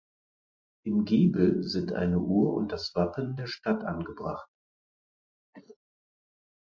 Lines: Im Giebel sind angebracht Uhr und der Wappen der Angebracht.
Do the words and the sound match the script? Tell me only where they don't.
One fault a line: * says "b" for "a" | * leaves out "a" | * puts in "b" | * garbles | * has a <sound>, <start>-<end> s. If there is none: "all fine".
* says "eine" for "angebracht"
* says "das" for "der"
* puts in "Stadt"
* has a cough, 5.5-5.8 s